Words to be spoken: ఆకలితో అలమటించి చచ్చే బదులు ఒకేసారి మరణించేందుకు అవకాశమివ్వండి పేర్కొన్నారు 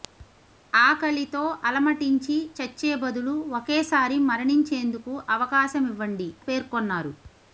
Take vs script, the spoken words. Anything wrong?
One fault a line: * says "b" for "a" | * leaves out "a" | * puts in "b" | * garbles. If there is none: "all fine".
all fine